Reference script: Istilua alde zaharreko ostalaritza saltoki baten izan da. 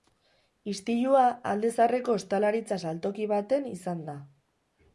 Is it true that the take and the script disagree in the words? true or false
false